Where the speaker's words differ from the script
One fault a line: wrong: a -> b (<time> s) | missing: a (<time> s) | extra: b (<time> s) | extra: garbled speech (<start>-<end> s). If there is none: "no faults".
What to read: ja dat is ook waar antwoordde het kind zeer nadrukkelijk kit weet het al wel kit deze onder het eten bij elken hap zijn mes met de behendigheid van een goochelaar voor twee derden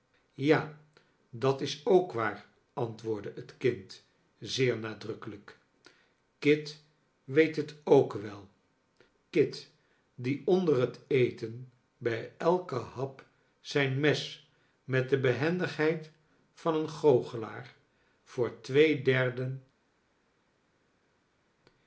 wrong: al -> ook (7.8 s)
wrong: deze -> die (10.2 s)